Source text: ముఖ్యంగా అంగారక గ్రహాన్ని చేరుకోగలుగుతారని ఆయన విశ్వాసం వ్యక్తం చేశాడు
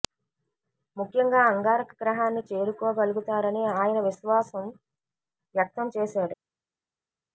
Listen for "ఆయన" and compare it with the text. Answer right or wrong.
right